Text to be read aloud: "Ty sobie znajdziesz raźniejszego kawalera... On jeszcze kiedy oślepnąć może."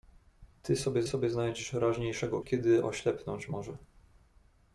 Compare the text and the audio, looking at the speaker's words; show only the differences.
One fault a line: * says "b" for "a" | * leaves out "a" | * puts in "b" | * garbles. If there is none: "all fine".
* puts in "sobie"
* leaves out "kawalera On jeszcze"